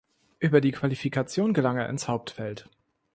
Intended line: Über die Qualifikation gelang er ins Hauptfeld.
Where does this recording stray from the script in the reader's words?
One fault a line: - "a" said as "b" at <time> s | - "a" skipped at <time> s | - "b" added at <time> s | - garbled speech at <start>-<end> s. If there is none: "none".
none